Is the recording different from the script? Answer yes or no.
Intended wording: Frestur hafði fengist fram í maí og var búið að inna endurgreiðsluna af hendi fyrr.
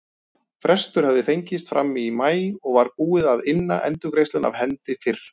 no